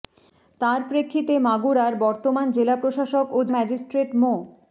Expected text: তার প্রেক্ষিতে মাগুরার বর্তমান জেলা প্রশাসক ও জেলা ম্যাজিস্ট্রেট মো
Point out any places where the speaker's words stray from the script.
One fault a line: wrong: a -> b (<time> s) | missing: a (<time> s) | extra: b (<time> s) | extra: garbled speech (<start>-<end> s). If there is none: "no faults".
missing: জেলা (3.5 s)